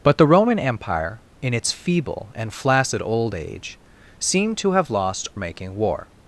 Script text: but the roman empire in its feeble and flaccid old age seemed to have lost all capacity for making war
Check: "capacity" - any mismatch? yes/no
yes